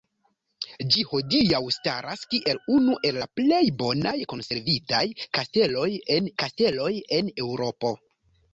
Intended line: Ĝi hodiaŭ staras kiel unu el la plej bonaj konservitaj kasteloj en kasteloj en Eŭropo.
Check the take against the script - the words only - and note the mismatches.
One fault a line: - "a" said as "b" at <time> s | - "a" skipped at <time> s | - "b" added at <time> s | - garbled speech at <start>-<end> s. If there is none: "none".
none